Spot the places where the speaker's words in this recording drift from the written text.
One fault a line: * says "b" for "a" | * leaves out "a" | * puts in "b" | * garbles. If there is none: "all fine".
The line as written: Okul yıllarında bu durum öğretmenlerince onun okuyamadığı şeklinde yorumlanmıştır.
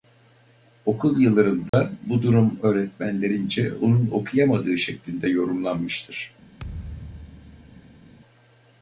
all fine